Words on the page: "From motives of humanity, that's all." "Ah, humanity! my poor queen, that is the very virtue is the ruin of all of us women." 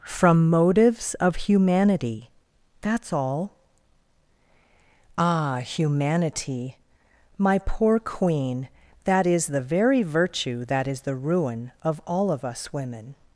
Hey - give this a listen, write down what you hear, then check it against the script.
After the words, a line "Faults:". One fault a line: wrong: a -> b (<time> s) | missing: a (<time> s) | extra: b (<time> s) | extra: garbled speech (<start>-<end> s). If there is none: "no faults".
"From motives of humanity, that's all." "Ah, humanity! my poor queen, that is the very virtue that is the ruin of all of us women."
Faults:
extra: that (10.7 s)